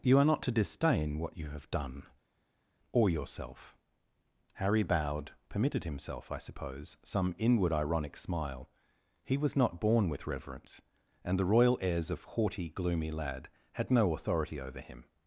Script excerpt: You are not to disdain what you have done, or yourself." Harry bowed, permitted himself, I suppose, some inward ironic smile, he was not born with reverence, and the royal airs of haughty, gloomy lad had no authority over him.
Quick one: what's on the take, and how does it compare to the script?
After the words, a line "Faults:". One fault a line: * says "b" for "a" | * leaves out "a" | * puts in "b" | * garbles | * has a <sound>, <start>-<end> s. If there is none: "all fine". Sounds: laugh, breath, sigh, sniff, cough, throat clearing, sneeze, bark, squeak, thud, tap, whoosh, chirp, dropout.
You are not to disdain what you have done, or yourself." Harry bowed, permitted himself, I suppose, some inward ironic smile, he was not born with reverence, and the royal airs of haughty, gloomy lad had no authority over him.
Faults:
all fine